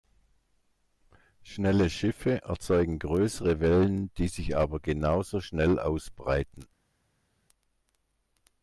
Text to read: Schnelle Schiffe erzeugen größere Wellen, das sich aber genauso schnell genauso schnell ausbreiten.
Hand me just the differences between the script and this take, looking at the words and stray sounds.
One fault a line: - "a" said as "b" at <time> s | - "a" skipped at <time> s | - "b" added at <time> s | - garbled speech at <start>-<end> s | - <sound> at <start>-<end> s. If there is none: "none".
- "das" said as "die" at 4.2 s
- "genauso schnell" skipped at 5.8 s